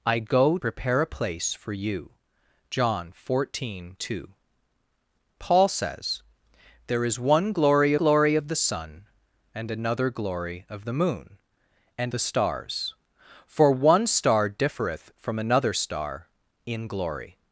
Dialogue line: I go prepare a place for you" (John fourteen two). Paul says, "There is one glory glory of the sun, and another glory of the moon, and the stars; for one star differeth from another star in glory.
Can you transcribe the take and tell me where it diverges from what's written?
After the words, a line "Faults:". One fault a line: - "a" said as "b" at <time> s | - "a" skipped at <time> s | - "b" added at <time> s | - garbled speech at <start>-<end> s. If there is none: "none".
I go prepare a place for you" (John fourteen two). Paul says, "There is one glory glory of the sun, and another glory of the moon, and the stars; for one star differeth from another star in glory.
Faults:
none